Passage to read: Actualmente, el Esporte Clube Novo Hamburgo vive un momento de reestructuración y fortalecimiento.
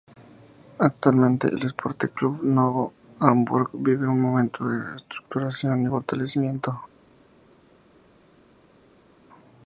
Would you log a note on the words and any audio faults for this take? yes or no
no